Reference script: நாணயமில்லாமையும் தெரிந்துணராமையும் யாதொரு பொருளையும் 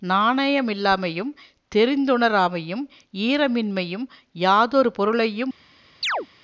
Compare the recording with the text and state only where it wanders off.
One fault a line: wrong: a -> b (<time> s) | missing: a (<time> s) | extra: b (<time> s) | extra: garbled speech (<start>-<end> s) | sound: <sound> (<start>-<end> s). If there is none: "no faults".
extra: ஈரமின்மையும் (3.1 s)
sound: chirp (6.0-6.3 s)